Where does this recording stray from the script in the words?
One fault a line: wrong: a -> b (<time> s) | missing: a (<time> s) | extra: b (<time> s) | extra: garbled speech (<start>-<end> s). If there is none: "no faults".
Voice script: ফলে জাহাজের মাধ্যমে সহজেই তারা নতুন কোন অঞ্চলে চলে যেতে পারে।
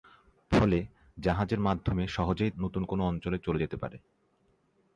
missing: তারা (2.5 s)